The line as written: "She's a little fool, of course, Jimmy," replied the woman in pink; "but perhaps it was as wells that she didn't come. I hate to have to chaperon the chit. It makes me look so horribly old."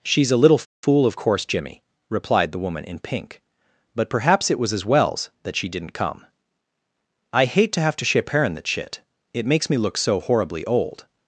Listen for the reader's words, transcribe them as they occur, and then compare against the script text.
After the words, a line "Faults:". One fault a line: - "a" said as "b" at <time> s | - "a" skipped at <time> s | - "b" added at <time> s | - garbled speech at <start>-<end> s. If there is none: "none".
"She's a little fool, of course, Jimmy," replied the woman in pink; "but perhaps it was as wells that she didn't come. I hate to have to chaperon the chit. It makes me look so horribly old."
Faults:
none